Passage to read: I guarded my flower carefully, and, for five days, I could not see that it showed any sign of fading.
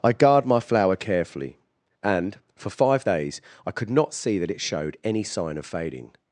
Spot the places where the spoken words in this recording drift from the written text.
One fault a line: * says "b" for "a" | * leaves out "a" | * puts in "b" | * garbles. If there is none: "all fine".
* says "guard" for "guarded"